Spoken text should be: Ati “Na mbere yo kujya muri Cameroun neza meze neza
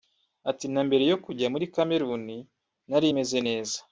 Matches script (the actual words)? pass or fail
fail